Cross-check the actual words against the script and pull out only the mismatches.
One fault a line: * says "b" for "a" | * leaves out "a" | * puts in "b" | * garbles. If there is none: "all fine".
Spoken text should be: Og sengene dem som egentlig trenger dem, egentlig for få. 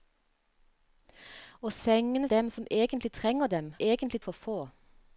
all fine